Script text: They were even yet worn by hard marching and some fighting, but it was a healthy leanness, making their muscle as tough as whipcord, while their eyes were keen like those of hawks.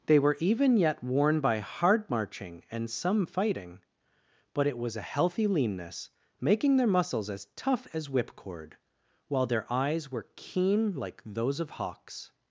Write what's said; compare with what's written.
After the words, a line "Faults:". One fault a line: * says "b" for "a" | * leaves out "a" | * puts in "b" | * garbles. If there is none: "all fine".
They were even yet worn by hard marching and some fighting, but it was a healthy leanness, making their muscles as tough as whipcord, while their eyes were keen like those of hawks.
Faults:
* says "muscles" for "muscle"